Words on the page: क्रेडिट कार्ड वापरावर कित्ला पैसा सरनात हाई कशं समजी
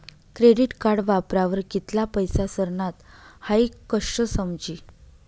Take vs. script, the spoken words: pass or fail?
pass